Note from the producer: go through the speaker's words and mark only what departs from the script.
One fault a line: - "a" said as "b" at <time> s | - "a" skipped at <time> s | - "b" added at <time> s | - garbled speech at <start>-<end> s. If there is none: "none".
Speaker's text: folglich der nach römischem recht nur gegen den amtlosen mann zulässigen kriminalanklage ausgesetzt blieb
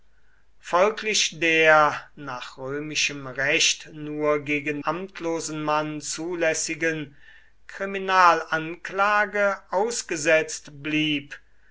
- "den" skipped at 4.8 s